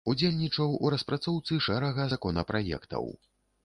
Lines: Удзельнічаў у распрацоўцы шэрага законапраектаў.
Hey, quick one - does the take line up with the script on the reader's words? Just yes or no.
yes